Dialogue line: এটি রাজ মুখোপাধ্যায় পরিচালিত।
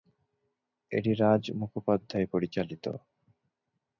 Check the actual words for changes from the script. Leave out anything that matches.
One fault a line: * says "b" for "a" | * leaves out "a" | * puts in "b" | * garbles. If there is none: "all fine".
all fine